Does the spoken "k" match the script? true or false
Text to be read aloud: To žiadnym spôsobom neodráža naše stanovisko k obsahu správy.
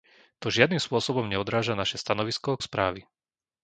false